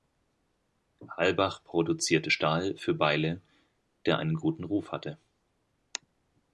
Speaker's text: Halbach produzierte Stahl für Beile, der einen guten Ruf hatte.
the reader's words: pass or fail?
pass